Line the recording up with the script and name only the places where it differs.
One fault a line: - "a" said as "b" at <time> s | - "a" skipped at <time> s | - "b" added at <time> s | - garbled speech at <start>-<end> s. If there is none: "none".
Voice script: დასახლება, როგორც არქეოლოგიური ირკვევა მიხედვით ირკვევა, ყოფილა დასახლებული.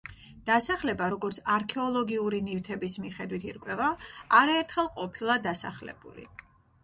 - "ირკვევა" said as "ნივთების" at 2.5 s
- "არაერთხელ" added at 4.4 s